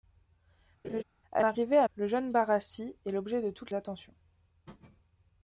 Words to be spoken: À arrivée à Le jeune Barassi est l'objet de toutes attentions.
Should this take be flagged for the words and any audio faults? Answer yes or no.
yes